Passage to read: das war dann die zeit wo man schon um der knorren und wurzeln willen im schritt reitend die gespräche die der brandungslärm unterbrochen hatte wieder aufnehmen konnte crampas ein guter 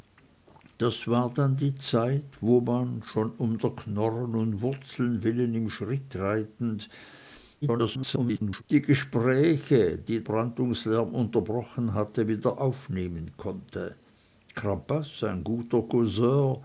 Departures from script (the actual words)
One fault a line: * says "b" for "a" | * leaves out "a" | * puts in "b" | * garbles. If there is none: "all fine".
* garbles
* leaves out "der"